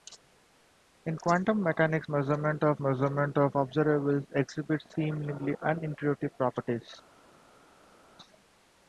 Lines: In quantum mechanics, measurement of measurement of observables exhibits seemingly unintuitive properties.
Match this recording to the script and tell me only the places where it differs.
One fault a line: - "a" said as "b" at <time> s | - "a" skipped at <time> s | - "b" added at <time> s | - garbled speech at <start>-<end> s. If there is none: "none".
none